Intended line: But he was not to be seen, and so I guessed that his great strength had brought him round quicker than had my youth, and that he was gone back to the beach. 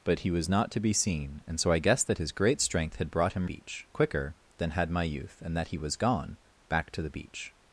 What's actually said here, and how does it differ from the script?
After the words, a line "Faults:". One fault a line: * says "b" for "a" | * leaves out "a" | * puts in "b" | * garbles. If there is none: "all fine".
But he was not to be seen, and so I guessed that his great strength had brought him beach quicker than had my youth, and that he was gone back to the beach.
Faults:
* says "beach" for "round"